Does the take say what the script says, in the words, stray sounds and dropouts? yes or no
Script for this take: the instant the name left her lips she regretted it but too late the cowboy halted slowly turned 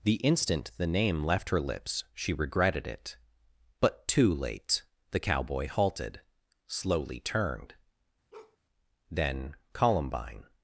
no